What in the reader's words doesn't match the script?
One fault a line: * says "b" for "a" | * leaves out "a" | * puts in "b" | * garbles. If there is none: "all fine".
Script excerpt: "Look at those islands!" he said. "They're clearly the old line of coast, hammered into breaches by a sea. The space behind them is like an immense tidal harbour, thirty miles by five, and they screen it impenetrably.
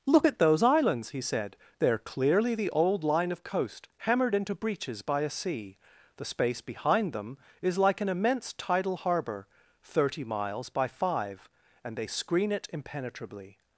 all fine